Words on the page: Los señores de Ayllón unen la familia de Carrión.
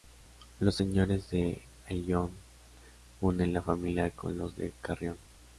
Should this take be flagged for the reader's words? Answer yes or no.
yes